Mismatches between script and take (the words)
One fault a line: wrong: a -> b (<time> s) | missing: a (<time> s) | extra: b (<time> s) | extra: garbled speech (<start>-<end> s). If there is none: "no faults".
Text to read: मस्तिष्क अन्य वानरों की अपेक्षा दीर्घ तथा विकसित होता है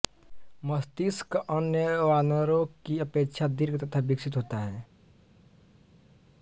no faults